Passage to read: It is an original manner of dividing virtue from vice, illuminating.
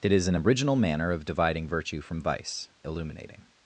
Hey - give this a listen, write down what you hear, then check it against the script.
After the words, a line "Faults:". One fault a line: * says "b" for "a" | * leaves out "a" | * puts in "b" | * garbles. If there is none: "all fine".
It is an original manner of dividing virtue from vice, illuminating.
Faults:
all fine